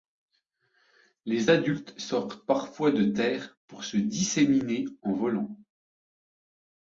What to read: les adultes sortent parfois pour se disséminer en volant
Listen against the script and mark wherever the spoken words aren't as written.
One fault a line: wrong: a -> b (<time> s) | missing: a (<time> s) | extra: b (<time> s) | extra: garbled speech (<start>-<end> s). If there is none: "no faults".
extra: de terre (2.9 s)